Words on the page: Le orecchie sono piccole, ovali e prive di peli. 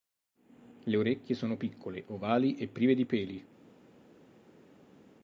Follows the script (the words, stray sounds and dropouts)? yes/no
yes